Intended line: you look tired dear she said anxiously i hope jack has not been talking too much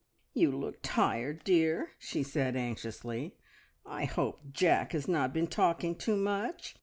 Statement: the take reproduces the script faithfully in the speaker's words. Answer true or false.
true